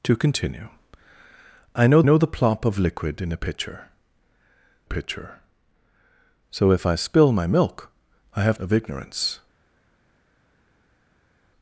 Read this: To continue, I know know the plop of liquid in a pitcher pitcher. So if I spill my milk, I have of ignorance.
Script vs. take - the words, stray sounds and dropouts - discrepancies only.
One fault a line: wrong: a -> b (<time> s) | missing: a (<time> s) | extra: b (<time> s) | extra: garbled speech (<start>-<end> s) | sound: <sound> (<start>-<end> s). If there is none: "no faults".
no faults